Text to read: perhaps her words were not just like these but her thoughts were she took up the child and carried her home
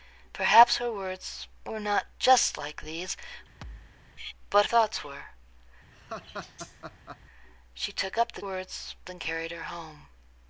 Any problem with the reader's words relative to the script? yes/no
yes